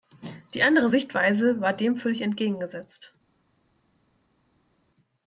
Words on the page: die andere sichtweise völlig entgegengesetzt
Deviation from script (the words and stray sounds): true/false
true